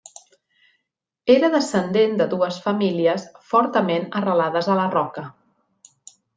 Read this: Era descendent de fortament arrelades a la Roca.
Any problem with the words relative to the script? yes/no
yes